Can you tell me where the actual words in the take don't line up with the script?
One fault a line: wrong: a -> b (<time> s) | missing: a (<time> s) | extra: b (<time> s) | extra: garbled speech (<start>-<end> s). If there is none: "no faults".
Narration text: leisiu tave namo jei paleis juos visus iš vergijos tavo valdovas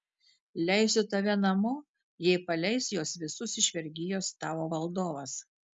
no faults